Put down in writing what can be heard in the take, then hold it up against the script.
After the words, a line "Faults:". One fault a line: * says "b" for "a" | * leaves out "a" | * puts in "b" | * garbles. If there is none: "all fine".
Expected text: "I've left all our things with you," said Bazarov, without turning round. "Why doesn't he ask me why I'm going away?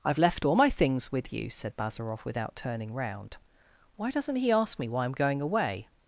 "I've left all my things with you," said Bazarov, without turning round. "Why doesn't he ask me why I'm going away?
Faults:
* says "my" for "our"